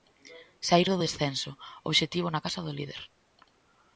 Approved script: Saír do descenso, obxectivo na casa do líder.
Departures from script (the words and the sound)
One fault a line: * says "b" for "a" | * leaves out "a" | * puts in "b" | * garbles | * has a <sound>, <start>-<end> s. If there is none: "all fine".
all fine